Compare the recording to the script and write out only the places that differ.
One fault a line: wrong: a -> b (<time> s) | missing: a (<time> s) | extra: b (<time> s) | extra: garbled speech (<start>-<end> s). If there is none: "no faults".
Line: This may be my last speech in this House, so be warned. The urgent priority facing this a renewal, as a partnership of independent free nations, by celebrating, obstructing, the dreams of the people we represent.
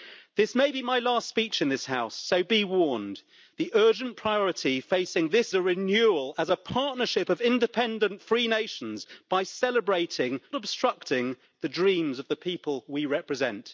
no faults